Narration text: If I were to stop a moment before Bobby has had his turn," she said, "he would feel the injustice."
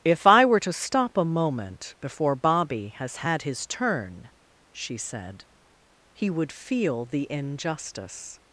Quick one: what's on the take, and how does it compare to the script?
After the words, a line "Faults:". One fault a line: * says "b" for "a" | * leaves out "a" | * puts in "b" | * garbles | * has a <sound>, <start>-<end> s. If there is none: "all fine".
If I were to stop a moment before Bobby has had his turn," she said, "he would feel the injustice."
Faults:
all fine